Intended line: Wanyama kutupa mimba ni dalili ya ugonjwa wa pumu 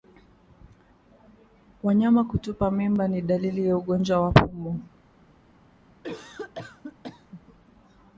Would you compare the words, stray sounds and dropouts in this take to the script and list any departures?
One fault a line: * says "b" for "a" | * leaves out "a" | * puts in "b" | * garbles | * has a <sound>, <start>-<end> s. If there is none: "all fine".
* has a cough, 6.0-7.4 s